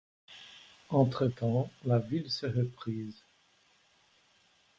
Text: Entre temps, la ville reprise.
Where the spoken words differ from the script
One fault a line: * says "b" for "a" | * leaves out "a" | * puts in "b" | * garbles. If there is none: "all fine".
* puts in "s'est"